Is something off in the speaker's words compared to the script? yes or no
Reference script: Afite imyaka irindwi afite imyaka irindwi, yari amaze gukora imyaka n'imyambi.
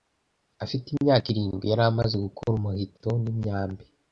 yes